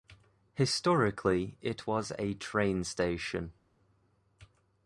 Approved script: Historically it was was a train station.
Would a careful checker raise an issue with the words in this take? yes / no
yes